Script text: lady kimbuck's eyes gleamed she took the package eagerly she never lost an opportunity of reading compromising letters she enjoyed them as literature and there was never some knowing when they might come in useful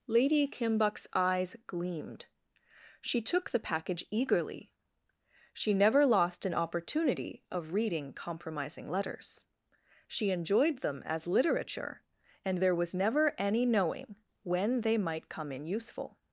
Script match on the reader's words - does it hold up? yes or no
no